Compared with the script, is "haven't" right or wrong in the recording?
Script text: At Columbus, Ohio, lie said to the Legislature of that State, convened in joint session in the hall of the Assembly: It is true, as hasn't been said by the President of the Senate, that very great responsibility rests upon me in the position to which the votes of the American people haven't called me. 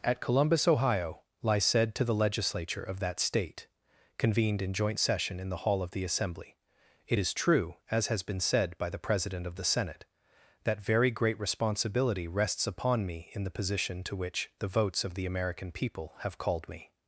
wrong